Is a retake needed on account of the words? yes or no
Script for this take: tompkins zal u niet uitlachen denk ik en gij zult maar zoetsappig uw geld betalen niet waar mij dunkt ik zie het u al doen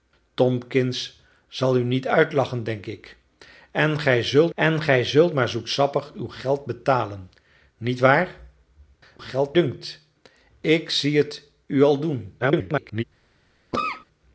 yes